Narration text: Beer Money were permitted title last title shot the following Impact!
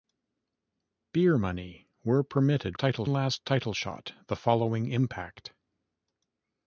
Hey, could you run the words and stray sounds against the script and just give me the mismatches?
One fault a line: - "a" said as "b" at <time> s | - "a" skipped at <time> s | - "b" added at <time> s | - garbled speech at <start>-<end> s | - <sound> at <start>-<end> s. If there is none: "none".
none